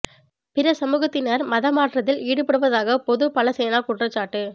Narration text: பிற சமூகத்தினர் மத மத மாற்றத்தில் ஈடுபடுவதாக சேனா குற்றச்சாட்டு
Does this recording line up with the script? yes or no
no